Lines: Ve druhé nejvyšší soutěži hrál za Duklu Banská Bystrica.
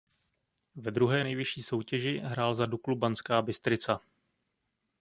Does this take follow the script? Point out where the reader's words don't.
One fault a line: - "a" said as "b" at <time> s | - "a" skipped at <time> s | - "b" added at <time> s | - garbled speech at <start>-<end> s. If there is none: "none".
none